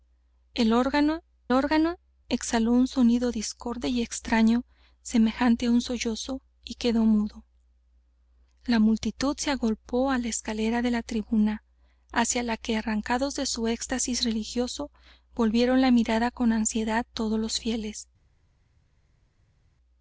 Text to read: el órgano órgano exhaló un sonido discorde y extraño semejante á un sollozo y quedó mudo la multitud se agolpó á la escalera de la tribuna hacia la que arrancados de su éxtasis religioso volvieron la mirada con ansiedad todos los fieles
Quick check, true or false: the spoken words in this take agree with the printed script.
true